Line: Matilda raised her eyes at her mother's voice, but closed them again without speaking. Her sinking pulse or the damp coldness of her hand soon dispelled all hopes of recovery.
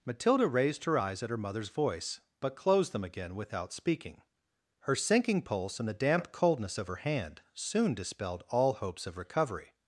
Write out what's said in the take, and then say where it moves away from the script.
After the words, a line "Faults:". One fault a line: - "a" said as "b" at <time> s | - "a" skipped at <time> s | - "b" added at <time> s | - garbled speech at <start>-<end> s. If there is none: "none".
Matilda raised her eyes at her mother's voice, but closed them again without speaking. Her sinking pulse and the damp coldness of her hand soon dispelled all hopes of recovery.
Faults:
- "or" said as "and" at 5.8 s